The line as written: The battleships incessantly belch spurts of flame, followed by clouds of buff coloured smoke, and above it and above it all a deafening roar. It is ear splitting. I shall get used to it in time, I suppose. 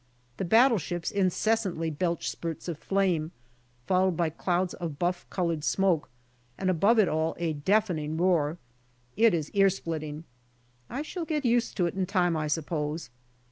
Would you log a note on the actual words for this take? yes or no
yes